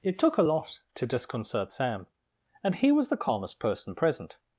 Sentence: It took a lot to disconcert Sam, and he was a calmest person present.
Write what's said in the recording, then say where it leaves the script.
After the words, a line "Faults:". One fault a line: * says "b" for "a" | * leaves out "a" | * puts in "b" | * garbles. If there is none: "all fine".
It took a lot to disconcert Sam, and he was the calmest person present.
Faults:
* says "the" for "a"